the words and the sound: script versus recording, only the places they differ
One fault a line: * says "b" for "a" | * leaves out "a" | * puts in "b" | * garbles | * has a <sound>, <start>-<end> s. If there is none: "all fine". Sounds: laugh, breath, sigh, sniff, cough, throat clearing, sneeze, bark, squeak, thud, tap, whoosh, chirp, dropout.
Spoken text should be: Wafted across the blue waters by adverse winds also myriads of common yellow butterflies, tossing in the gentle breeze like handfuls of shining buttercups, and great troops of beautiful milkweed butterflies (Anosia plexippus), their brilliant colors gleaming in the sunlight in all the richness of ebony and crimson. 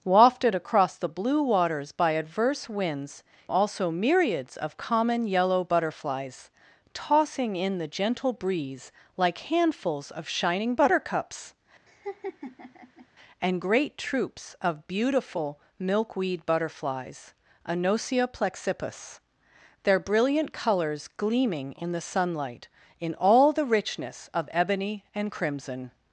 * has a laugh, 11.9-13.1 s